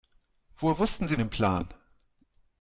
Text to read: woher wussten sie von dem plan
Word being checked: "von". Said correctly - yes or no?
no